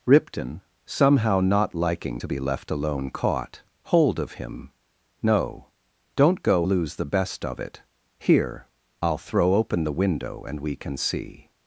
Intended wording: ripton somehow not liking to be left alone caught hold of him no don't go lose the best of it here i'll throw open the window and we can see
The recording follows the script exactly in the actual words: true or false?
true